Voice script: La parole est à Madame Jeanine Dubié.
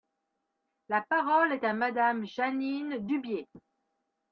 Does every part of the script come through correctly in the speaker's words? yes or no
yes